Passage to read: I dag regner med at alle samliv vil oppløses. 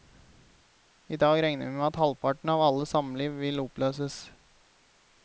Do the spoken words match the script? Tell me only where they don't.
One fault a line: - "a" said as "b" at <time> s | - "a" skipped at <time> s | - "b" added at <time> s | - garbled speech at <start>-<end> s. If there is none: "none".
- "vi" added at 1.6 s
- "halvparten av" added at 2.0 s